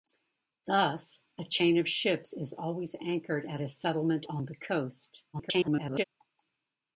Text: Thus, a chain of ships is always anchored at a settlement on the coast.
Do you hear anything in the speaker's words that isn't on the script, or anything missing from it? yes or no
yes